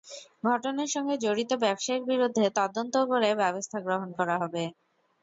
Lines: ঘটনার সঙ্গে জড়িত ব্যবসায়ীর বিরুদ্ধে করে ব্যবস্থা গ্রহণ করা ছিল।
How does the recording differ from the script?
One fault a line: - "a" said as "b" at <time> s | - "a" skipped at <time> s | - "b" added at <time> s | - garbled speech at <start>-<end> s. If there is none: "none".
- "তদন্ত" added at 2.6 s
- "ছিল" said as "হবে" at 4.4 s